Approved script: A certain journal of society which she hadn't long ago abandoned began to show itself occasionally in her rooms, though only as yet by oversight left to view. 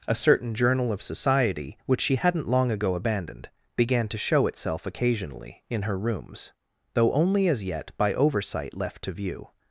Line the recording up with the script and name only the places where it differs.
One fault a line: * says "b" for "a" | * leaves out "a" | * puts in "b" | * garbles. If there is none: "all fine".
all fine